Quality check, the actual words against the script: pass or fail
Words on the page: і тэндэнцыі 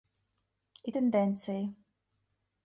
pass